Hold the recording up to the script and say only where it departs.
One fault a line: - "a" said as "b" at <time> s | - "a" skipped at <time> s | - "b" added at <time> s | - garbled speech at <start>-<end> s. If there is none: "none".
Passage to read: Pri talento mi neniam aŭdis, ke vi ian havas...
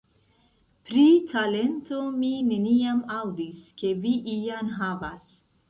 none